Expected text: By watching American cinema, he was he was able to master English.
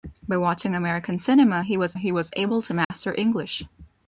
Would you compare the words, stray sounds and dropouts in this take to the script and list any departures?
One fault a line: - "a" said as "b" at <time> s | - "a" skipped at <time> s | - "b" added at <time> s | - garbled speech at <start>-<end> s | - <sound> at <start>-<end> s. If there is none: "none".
- dropout at 2.8-2.9 s